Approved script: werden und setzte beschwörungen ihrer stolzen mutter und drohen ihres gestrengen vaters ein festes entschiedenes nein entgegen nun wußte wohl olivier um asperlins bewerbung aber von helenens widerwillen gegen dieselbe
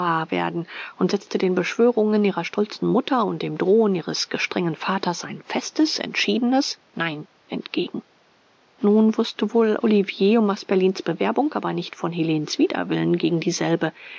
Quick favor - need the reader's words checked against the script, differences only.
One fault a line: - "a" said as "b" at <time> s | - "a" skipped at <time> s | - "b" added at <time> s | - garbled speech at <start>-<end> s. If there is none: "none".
- "den" added at 1.4 s
- "dem" added at 3.4 s
- "nicht" added at 11.7 s